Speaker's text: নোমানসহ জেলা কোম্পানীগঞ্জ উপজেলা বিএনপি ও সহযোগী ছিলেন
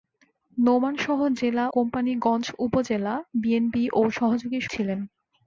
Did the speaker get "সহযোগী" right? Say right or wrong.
right